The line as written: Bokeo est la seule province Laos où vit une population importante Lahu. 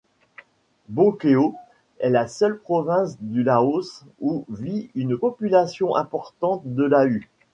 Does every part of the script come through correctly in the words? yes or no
no